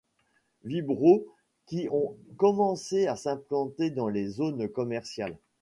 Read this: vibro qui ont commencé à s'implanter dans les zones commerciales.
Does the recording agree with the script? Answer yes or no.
yes